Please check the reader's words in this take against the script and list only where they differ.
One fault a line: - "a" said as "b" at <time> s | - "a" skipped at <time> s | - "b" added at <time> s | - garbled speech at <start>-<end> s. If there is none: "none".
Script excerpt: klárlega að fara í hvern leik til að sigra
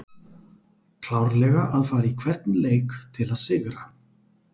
none